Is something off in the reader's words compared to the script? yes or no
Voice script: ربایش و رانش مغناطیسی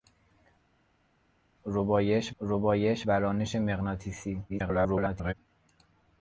yes